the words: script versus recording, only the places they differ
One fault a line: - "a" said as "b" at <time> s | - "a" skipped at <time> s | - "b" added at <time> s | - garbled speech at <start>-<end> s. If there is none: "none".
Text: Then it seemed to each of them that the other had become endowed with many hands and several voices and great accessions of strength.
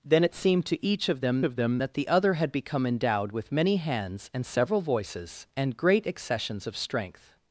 - "of them" added at 1.4 s